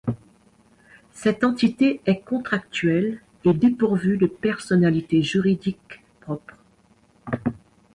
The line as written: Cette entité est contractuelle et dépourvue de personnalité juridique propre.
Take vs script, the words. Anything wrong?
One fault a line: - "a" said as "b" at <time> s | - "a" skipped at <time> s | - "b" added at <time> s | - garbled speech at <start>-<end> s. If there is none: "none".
none